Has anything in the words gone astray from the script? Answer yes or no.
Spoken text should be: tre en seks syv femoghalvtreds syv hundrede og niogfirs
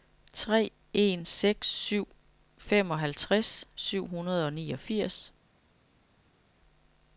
no